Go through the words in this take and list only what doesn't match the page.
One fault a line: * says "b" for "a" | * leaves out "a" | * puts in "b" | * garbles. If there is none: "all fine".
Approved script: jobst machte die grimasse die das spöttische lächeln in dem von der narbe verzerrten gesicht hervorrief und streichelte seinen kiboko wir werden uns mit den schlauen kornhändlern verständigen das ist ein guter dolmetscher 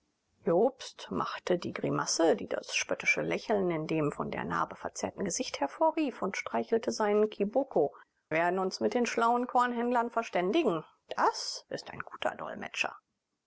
* leaves out "wir"